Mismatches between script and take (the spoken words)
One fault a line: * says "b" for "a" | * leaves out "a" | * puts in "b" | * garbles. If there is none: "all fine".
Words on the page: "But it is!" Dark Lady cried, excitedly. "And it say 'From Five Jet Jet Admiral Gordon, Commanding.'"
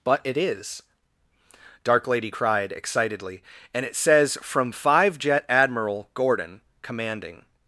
* says "says" for "say"
* leaves out "Jet"